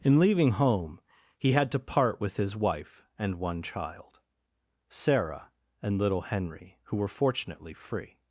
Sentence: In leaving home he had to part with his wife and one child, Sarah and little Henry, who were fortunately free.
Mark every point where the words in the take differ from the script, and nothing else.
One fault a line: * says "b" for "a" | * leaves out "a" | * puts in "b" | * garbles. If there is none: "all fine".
all fine